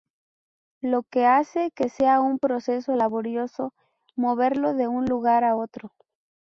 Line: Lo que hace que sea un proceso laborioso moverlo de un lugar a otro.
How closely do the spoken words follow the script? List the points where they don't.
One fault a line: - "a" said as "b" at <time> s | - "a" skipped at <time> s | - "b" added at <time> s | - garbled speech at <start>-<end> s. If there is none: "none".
none